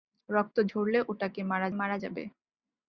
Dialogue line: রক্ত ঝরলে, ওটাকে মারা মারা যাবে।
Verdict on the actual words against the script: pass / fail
pass